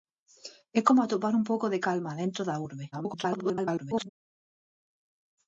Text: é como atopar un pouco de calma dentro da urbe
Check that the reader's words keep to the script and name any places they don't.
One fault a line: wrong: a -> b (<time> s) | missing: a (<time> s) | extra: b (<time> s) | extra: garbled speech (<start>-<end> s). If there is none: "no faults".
extra: garbled speech (2.9-4.1 s)